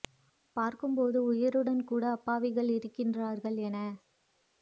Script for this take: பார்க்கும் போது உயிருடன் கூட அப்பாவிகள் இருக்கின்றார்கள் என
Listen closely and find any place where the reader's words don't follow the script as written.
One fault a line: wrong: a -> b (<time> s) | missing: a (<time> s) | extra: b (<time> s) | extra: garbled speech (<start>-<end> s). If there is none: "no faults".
no faults